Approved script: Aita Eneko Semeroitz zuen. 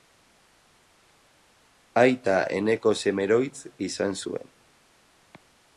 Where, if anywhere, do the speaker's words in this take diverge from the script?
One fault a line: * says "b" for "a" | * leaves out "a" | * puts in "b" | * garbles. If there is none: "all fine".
* puts in "izan"